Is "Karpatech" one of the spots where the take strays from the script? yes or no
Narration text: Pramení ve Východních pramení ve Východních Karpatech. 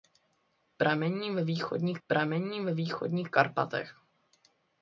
no